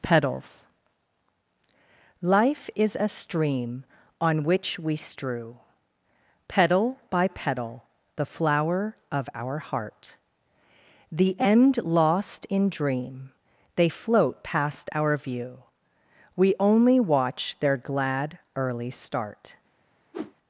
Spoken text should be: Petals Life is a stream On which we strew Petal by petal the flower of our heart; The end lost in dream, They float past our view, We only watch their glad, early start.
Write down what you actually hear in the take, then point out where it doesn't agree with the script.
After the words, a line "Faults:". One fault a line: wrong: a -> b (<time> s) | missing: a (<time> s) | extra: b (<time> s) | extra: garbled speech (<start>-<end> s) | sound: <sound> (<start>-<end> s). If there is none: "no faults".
Petals Life is a stream On which we strew Petal by petal the flower of our heart; The end lost in dream, They float past our view, We only watch their glad, early start.
Faults:
sound: whoosh (20.1-20.3 s)